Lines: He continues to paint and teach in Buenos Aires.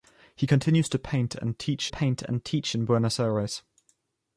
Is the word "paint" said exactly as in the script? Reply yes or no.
yes